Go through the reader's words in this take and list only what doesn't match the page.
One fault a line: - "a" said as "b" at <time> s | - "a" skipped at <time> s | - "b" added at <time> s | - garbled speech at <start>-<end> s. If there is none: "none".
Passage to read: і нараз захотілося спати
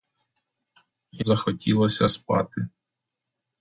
- "нараз" skipped at 1.2 s